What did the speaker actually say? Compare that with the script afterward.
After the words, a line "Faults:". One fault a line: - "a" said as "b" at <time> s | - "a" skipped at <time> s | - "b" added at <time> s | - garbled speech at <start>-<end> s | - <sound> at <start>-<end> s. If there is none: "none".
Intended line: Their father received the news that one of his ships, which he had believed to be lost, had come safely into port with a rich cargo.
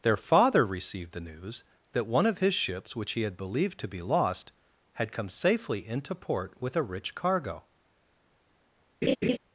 Their father received the news that one of his ships, which he had believed to be lost, had come safely into port with a rich cargo.
Faults:
- laugh at 9.0-9.4 s